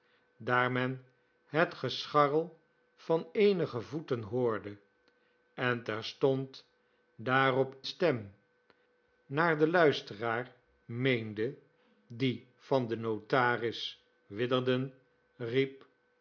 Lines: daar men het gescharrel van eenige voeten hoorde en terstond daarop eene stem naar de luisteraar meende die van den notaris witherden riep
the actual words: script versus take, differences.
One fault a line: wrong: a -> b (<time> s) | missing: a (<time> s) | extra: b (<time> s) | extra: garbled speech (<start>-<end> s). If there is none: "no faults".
missing: eene (7.8 s)